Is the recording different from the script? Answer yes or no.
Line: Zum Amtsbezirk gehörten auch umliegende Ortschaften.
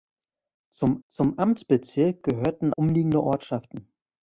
yes